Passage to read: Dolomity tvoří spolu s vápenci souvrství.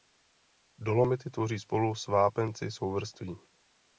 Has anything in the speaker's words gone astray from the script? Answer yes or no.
no